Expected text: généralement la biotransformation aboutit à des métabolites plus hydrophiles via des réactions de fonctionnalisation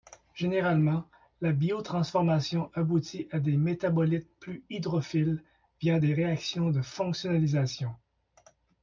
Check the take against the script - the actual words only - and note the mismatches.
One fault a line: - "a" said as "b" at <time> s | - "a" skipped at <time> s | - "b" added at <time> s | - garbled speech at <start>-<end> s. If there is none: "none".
none